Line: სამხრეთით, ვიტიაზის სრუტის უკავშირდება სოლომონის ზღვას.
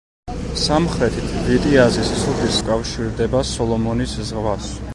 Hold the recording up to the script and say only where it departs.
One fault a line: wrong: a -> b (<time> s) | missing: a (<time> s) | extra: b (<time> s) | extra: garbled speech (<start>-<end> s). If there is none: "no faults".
no faults